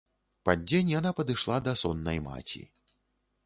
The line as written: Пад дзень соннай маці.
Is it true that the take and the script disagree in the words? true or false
true